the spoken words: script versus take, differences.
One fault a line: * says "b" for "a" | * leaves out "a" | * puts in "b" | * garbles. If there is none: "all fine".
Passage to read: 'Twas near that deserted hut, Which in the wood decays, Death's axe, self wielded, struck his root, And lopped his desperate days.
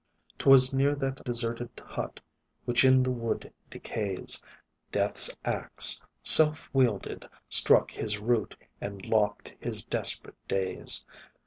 all fine